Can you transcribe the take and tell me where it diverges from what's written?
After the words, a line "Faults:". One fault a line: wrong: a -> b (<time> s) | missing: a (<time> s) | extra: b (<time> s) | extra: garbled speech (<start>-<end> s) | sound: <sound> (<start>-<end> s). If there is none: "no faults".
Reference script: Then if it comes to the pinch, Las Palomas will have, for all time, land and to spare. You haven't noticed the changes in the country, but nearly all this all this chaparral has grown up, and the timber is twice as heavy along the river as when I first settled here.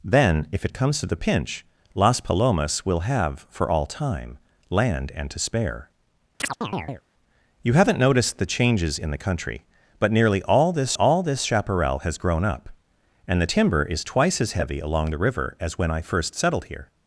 Then if it comes to the pinch, Las Palomas will have, for all time, land and to spare. You haven't noticed the changes in the country, but nearly all this all this chaparral has grown up, and the timber is twice as heavy along the river as when I first settled here.
Faults:
sound: chirp (6.4-7.0 s)